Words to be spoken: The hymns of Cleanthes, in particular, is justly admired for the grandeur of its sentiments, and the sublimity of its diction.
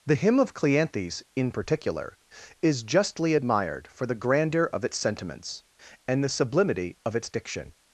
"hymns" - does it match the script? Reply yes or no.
no